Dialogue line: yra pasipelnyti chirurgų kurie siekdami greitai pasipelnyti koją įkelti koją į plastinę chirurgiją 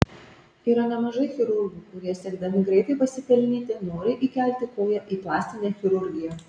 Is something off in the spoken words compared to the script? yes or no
yes